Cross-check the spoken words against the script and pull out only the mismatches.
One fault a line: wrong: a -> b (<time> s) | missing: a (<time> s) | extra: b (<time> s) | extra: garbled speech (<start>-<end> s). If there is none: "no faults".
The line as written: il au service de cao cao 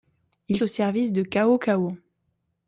no faults